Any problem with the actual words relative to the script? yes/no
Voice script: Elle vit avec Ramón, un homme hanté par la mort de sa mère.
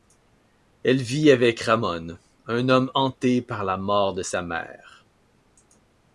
no